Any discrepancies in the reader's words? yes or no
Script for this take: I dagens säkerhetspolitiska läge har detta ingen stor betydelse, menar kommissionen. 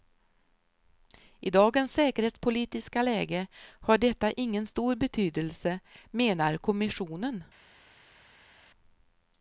no